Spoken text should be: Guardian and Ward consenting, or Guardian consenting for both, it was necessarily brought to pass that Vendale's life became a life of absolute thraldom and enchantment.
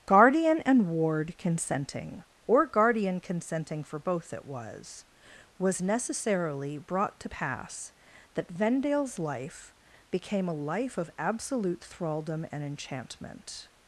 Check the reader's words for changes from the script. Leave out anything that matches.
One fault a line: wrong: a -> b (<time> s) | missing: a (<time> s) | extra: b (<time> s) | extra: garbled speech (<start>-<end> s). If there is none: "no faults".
extra: was (5.6 s)